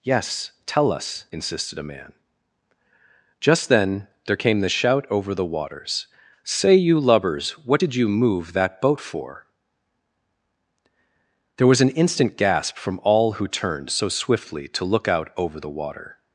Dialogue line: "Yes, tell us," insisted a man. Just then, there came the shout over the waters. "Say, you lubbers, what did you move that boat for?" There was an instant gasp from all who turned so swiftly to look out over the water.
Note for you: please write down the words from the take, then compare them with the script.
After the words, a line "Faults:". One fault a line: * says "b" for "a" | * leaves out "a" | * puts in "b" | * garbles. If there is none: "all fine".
"Yes, tell us," insisted a man. Just then, there came the shout over the waters. "Say, you lubbers, what did you move that boat for?" There was an instant gasp from all who turned so swiftly to look out over the water.
Faults:
all fine